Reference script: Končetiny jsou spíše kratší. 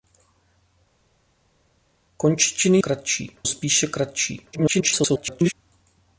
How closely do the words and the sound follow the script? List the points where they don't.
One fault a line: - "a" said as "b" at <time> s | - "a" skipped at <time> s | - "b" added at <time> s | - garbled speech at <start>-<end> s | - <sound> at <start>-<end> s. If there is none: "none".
- "jsou" said as "kratší" at 2.8 s
- garbled speech at 4.5-5.5 s